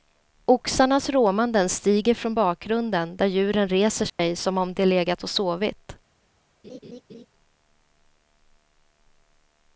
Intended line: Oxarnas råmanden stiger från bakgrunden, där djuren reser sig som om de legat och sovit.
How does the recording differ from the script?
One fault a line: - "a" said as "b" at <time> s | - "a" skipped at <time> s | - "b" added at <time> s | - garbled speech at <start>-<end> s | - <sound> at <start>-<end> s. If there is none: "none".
- dropout at 4.1-4.2 s
- laugh at 6.6-7.3 s